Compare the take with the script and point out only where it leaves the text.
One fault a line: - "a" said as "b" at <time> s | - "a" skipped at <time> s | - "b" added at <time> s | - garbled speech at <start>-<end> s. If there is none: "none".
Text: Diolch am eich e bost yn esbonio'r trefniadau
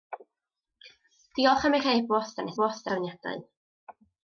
- "esbonio'r" said as "bost" at 2.6 s